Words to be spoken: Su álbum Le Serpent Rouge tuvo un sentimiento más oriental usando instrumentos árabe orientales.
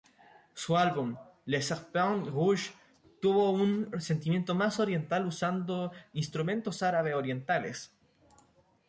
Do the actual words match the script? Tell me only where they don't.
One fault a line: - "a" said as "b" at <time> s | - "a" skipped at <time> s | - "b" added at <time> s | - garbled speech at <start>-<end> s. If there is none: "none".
none